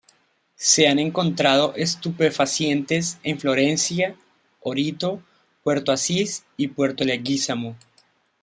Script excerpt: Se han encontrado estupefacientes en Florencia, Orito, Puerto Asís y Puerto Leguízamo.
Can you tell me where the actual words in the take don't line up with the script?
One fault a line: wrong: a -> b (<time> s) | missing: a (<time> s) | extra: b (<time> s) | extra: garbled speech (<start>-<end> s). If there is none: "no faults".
no faults